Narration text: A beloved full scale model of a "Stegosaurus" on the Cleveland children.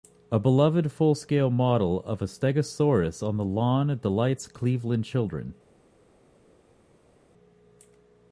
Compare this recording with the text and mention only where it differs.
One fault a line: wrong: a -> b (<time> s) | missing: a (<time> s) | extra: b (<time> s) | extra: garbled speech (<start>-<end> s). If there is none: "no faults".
extra: lawn delights (3.5 s)